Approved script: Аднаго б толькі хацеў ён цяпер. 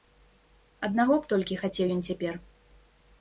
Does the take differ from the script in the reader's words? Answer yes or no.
no